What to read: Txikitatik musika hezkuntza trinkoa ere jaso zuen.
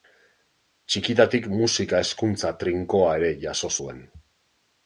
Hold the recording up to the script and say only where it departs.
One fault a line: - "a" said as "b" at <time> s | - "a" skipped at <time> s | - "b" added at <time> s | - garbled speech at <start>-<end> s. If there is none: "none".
none